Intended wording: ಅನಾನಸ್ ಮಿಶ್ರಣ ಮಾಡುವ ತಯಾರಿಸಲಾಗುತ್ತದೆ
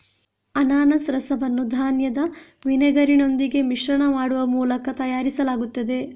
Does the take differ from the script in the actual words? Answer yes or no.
yes